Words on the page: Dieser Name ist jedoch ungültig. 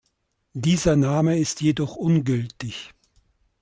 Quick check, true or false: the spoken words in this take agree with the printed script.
true